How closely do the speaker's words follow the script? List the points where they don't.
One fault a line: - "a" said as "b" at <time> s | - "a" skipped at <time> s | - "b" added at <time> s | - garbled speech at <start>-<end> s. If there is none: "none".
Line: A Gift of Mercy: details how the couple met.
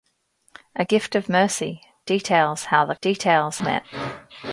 - "couple" said as "details" at 3.0 s